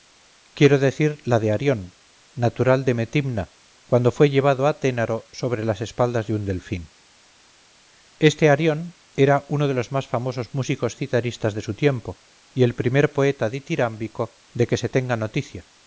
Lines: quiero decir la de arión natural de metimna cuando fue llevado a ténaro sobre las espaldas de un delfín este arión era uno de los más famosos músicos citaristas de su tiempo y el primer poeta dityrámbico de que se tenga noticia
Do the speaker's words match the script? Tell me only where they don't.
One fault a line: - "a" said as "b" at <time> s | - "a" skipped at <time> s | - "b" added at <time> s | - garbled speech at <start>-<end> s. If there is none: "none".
none